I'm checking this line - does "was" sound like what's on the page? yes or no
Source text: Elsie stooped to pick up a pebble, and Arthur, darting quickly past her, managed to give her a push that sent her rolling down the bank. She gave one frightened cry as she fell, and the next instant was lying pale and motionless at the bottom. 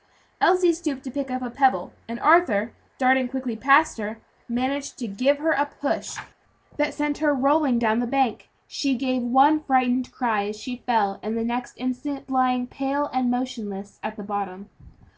no